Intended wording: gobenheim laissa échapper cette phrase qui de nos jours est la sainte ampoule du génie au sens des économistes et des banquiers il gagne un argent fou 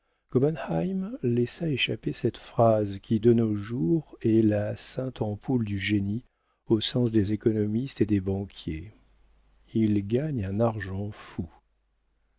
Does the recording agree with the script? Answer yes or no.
yes